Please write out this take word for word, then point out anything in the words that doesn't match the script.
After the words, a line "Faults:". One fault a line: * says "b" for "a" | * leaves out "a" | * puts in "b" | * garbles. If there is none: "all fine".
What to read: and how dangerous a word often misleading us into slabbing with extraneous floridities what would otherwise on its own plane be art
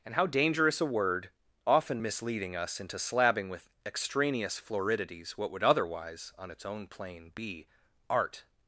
and how dangerous a word often misleading us into slabbing with extraneous floridities what would otherwise on its own plane be art
Faults:
all fine